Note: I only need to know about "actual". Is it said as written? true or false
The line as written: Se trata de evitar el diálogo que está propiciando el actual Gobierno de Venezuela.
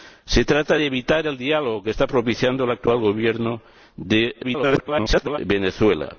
true